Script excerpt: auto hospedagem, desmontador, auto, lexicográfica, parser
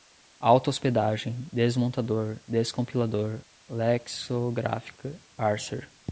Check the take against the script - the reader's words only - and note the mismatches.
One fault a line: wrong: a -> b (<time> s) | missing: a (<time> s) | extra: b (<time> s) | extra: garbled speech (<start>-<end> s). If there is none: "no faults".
wrong: auto -> descompilador (2.5 s)